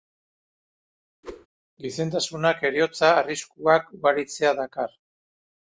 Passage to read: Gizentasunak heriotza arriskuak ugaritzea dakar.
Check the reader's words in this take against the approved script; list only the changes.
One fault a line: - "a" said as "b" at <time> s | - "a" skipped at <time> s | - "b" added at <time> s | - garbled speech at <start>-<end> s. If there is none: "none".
none